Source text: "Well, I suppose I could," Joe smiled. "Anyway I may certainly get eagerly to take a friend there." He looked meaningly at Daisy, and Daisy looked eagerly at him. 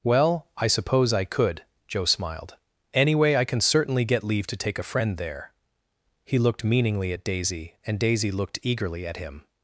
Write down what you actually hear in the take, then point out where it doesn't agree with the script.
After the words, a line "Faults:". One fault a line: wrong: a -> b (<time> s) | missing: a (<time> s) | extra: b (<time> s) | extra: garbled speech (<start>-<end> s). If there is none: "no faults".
"Well, I suppose I could," Joe smiled. "Anyway I can certainly get leave to take a friend there." He looked meaningly at Daisy, and Daisy looked eagerly at him.
Faults:
wrong: may -> can (3.5 s)
wrong: eagerly -> leave (4.2 s)